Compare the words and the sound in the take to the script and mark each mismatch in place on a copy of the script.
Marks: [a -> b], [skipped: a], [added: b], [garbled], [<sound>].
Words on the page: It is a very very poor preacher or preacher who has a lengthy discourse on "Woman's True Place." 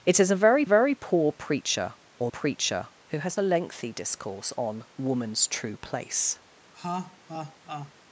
It is a very very poor preacher or preacher who has a lengthy discourse on "Woman's True Place." [laugh]